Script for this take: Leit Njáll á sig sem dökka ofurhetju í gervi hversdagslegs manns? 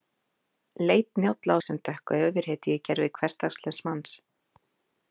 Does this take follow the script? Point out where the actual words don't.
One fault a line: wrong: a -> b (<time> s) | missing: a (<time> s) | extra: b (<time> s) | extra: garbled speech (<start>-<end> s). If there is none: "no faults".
missing: sig (1.6 s)